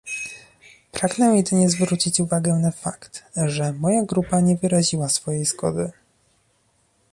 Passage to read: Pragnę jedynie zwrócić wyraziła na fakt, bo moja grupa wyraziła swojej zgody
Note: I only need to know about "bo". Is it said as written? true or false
false